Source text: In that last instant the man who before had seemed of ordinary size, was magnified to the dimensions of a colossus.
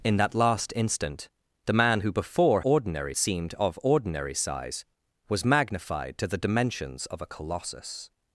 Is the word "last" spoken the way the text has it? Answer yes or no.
yes